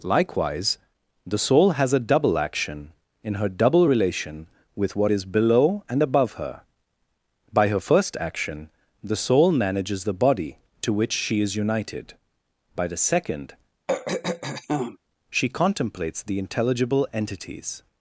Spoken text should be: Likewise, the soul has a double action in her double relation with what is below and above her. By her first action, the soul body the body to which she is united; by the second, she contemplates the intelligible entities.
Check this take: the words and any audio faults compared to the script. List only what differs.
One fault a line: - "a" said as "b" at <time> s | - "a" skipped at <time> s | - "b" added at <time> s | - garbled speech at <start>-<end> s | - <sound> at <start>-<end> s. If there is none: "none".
- "body" said as "manages" at 9.5 s
- throat clearing at 13.9-15.0 s